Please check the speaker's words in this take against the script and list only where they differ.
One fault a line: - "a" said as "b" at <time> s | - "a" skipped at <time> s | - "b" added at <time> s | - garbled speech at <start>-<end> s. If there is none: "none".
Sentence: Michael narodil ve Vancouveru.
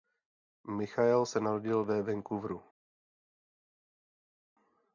- "se" added at 1.2 s